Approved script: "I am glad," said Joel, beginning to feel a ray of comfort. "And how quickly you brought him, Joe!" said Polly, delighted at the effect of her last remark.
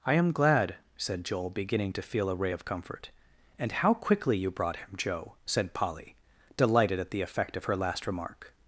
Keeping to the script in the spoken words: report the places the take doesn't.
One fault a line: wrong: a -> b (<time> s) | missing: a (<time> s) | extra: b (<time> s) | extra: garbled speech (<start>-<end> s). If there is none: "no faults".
no faults